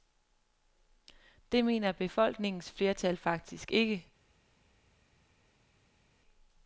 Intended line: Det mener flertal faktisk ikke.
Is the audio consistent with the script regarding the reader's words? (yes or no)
no